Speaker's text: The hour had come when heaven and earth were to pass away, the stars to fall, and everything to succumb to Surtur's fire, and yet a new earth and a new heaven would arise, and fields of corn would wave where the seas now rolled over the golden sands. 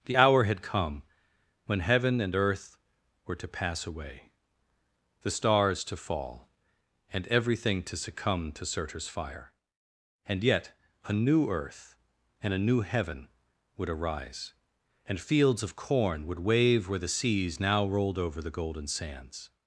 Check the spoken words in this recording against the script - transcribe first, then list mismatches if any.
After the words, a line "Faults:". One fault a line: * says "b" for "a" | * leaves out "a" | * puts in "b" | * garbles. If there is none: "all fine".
The hour had come when heaven and earth were to pass away, the stars to fall, and everything to succumb to Surtur's fire, and yet a new earth and a new heaven would arise, and fields of corn would wave where the seas now rolled over the golden sands.
Faults:
all fine